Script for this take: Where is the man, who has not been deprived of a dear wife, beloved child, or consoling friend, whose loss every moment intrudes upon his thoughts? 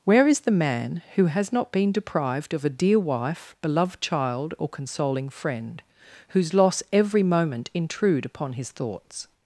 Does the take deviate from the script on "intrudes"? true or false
true